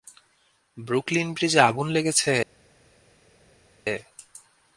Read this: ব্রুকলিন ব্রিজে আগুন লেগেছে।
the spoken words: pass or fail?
pass